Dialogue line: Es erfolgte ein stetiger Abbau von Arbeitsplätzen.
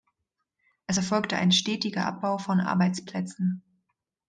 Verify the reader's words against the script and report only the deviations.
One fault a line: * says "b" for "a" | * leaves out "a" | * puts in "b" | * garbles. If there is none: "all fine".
all fine